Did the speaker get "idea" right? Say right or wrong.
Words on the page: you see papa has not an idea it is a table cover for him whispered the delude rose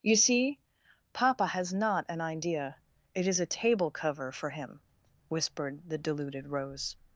right